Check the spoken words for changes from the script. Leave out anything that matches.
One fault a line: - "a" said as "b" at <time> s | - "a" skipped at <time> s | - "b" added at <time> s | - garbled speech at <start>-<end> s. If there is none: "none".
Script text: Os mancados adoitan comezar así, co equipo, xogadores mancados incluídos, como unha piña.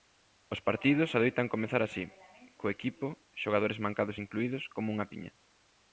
- "mancados" said as "partidos" at 0.7 s